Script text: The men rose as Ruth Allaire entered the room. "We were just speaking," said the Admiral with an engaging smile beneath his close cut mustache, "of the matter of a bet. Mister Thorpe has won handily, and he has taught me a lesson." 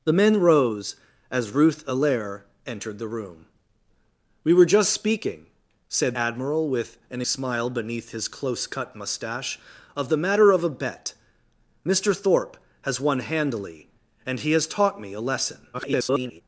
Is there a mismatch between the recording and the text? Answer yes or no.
yes